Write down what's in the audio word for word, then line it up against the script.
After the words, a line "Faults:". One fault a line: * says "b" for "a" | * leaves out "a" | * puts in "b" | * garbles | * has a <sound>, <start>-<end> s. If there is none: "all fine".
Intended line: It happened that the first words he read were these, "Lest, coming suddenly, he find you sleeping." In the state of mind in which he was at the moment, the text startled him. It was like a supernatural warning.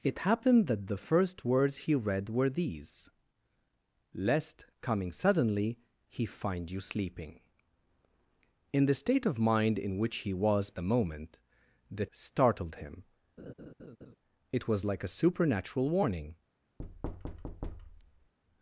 It happened that the first words he read were these, "Lest, coming suddenly, he find you sleeping." In the state of mind in which he was the moment, the startled him. It was like a supernatural warning.
Faults:
* leaves out "at"
* leaves out "text"
* has a laugh, 13.4-14.2 s
* has a thud, 16.8-18.3 s